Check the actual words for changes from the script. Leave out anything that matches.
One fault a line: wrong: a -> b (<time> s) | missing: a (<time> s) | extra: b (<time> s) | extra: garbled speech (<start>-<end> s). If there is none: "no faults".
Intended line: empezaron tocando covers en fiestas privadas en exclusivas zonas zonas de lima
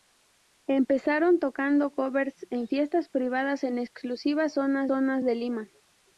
no faults